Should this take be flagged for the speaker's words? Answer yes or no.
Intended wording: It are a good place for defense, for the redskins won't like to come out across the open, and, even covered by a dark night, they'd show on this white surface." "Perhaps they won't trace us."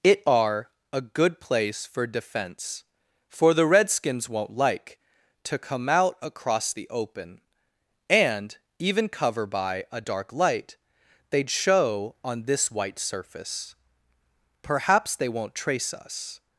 yes